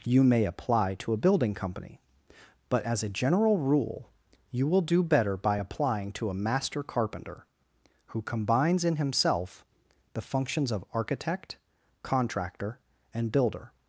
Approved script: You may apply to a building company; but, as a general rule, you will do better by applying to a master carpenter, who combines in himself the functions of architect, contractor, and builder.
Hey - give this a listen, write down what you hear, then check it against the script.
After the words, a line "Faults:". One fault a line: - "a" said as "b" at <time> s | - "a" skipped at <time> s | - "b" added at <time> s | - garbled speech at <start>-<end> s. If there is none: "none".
You may apply to a building company; but, as a general rule, you will do better by applying to a master carpenter, who combines in himself the functions of architect, contractor, and builder.
Faults:
none